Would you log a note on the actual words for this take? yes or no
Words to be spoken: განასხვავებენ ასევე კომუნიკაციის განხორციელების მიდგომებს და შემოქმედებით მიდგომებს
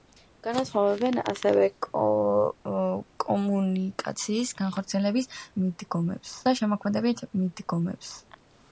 no